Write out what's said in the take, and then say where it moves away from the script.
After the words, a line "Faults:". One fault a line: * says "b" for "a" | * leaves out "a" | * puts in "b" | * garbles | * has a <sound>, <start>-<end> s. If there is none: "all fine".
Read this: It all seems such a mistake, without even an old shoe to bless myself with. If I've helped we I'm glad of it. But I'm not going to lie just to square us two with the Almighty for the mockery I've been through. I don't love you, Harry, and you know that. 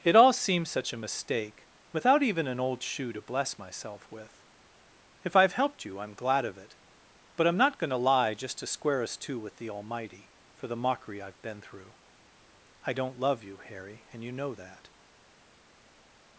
It all seems such a mistake, without even an old shoe to bless myself with. If I've helped you I'm glad of it. But I'm not going to lie just to square us two with the Almighty for the mockery I've been through. I don't love you, Harry, and you know that.
Faults:
* says "you" for "we"